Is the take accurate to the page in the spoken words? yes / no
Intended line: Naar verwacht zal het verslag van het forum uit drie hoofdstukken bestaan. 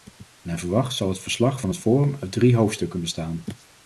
yes